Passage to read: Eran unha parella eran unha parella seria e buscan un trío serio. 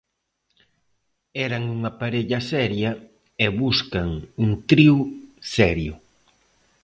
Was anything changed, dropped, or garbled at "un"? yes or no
no